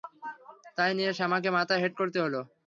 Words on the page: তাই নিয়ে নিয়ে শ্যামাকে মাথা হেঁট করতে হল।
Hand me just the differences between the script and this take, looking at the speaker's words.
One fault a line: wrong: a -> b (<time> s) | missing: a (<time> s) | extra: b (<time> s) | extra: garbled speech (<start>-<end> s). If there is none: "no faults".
missing: নিয়ে (1.1 s)